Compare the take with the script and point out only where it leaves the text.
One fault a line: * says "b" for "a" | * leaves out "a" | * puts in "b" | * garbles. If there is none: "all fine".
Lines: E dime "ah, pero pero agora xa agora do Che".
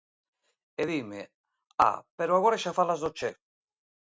* leaves out "pero"
* says "falas" for "agora"